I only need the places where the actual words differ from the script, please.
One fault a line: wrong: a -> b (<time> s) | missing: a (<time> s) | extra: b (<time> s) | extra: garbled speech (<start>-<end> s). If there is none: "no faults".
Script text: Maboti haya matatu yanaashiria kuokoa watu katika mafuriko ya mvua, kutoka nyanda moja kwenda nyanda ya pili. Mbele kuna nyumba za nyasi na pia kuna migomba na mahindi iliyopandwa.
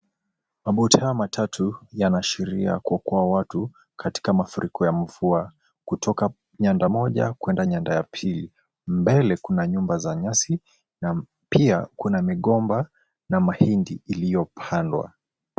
no faults